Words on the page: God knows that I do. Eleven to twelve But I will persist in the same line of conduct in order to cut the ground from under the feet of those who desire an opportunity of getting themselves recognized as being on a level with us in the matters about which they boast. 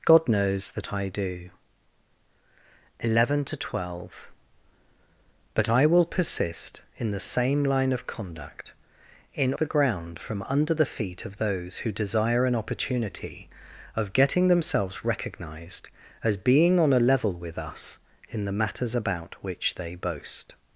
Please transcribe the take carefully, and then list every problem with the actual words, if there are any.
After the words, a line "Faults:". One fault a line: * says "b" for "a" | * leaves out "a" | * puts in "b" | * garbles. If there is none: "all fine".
God knows that I do. Eleven to twelve But I will persist in the same line of conduct in the ground from under the feet of those who desire an opportunity of getting themselves recognized as being on a level with us in the matters about which they boast.
Faults:
* leaves out "order to cut"